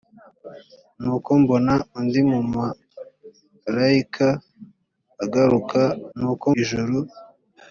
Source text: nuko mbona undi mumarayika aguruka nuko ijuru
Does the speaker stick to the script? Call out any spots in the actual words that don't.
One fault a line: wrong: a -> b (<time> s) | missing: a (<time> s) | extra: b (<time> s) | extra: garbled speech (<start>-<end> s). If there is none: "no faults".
no faults